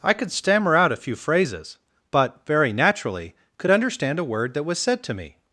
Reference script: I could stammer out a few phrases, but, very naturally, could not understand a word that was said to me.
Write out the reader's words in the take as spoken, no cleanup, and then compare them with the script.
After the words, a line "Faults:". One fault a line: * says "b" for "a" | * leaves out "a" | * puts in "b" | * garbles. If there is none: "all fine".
I could stammer out a few phrases, but, very naturally, could understand a word that was said to me.
Faults:
* leaves out "not"